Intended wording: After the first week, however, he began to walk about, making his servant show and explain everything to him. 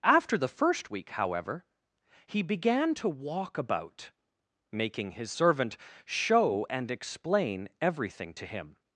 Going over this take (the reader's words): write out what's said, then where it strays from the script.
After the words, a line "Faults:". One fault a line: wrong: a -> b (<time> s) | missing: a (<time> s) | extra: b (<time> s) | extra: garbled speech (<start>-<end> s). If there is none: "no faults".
After the first week, however, he began to walk about, making his servant show and explain everything to him.
Faults:
no faults